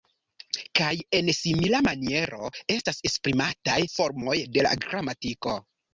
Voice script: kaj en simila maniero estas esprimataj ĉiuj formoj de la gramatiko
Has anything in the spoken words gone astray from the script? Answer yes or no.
yes